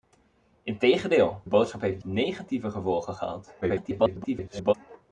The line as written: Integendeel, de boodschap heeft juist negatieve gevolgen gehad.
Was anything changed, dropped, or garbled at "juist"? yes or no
yes